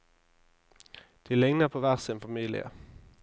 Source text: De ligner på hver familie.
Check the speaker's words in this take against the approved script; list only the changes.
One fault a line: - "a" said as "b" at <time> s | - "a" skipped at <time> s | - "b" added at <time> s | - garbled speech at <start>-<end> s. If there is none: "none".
- "sin" added at 2.0 s